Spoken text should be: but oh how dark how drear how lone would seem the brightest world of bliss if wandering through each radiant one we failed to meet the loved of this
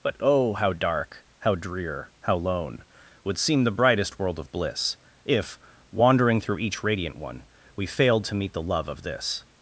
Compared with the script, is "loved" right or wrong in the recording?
wrong